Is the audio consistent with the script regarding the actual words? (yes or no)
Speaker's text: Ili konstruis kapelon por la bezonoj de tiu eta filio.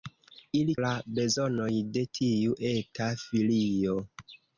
no